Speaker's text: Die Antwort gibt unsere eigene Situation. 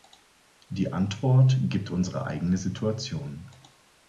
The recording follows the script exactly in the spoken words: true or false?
true